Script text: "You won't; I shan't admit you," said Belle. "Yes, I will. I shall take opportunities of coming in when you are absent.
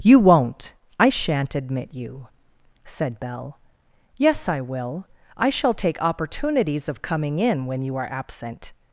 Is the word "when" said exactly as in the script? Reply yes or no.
yes